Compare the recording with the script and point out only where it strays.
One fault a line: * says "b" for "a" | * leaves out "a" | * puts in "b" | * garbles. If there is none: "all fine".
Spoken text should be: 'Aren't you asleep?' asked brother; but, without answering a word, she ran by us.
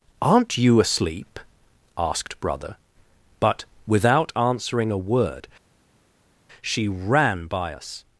all fine